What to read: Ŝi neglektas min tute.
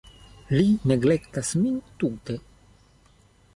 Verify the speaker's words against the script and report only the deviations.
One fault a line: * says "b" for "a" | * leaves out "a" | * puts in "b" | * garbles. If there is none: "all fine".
* says "Li" for "Ŝi"